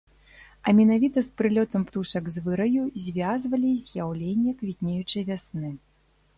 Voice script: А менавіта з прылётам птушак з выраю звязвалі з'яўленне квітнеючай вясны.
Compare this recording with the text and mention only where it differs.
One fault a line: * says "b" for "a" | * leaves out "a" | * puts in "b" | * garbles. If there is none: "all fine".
all fine